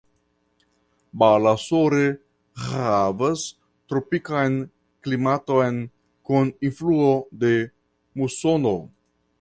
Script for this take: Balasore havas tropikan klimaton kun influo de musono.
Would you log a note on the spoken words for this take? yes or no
no